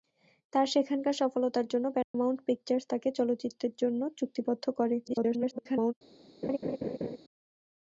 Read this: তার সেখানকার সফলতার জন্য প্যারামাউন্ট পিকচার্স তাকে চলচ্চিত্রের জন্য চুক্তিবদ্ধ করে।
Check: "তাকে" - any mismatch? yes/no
no